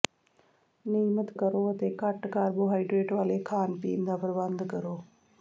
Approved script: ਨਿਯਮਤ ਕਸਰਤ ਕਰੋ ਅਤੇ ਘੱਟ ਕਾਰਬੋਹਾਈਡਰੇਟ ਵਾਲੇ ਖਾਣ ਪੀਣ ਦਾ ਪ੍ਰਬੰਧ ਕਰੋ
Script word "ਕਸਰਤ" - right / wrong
wrong